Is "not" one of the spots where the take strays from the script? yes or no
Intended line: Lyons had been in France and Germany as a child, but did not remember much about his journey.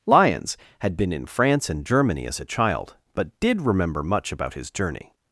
yes